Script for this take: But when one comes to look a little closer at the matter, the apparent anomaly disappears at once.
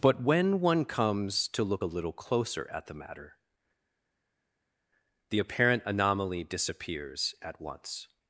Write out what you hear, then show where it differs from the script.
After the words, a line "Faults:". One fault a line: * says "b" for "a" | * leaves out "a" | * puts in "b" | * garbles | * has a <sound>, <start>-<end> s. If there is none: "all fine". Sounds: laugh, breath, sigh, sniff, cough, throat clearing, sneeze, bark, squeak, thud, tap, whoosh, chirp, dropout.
But when one comes to look a little closer at the matter, the apparent anomaly disappears at once.
Faults:
all fine